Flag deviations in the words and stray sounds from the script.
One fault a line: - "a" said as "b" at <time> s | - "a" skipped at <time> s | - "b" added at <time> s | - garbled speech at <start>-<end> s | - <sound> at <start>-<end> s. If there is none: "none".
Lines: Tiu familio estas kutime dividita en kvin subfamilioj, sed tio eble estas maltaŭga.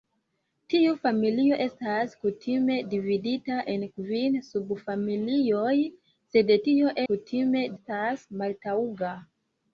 - "eble" said as "kutime" at 7.1 s